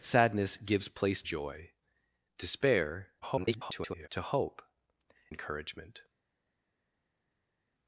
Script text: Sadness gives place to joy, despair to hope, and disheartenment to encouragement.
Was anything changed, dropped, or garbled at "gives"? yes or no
no